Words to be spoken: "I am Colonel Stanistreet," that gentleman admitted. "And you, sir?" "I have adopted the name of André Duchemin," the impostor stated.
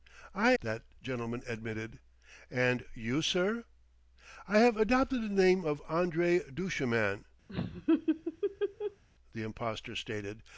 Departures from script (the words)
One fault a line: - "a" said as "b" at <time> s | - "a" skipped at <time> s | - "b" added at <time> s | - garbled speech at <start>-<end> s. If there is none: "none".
- "am Colonel Stanistreet" skipped at 0.5 s